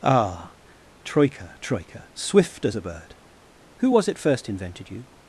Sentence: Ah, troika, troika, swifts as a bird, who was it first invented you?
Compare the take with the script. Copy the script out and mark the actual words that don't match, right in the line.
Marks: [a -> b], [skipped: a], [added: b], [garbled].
Ah, troika, troika, [swifts -> swift] as a bird, who was it first invented you?